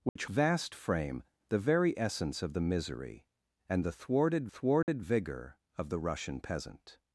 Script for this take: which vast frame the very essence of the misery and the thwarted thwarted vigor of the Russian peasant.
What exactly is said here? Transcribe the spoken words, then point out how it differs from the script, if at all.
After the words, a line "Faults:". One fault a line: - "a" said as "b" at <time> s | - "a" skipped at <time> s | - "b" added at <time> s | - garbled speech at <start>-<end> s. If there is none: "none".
which vast frame the very essence of the misery and the thwarted thwarted vigor of the Russian peasant.
Faults:
none